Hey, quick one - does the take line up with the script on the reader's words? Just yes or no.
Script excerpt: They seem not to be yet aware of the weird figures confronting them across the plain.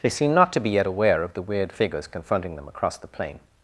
yes